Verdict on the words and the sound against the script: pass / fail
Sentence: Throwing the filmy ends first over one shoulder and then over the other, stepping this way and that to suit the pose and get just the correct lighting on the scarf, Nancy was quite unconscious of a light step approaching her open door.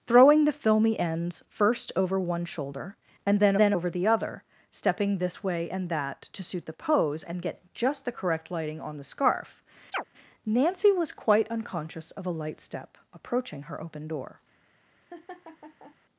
fail